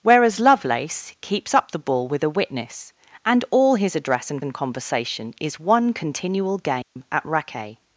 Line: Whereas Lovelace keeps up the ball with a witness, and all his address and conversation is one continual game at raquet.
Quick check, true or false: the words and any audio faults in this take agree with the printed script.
false